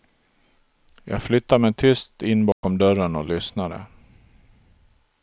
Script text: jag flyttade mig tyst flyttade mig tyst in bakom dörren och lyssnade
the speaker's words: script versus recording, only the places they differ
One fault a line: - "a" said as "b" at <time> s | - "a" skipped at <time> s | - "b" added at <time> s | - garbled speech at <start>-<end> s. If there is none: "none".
- "flyttade mig tyst" skipped at 2.2 s